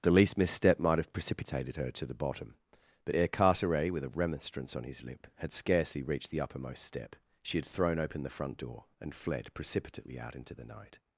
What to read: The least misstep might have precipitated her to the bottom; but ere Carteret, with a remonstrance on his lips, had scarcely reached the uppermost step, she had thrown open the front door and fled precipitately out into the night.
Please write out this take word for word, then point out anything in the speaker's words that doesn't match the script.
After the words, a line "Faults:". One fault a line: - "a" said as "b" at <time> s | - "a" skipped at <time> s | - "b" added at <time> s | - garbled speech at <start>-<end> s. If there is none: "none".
The least misstep might have precipitated her to the bottom; but ere Carteret, with a remonstrance on his lip, had scarcely reached the uppermost step, she had thrown open the front door and fled precipitately out into the night.
Faults:
- "lips" said as "lip" at 5.0 s